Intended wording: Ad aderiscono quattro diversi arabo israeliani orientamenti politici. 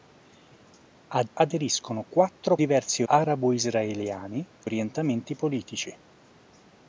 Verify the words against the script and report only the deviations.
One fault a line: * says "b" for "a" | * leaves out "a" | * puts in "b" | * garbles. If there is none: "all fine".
all fine